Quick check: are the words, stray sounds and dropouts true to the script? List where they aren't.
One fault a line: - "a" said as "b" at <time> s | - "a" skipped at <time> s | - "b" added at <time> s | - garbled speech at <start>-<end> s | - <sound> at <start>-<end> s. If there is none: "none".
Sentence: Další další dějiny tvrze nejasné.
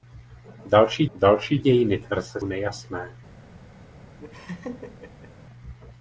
- laugh at 4.2-5.3 s